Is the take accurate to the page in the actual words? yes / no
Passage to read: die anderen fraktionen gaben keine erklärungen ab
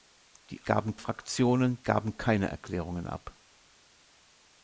no